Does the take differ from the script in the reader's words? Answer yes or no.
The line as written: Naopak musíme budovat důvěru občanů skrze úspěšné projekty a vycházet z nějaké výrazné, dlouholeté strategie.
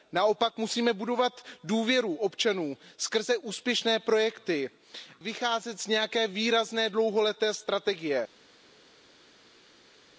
yes